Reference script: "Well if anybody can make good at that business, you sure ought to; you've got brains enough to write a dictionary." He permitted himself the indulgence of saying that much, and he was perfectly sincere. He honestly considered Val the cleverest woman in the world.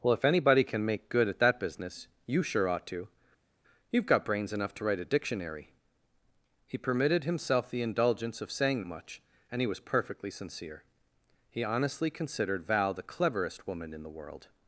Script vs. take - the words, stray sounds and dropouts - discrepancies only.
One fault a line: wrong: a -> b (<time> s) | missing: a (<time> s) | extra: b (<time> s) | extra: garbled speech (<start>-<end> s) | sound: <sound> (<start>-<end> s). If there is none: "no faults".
missing: that (8.8 s)